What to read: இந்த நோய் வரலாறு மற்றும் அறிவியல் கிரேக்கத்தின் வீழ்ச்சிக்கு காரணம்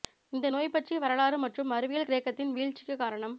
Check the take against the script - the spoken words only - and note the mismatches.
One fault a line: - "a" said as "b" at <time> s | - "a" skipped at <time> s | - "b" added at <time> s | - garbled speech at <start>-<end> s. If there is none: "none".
- "பற்றிய" added at 0.7 s